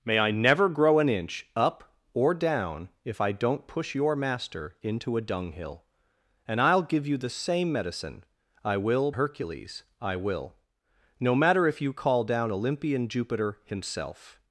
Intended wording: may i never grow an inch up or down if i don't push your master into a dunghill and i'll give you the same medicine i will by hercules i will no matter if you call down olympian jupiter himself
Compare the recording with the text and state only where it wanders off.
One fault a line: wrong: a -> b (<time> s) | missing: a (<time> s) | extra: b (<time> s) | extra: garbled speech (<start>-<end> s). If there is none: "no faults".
missing: by (9.1 s)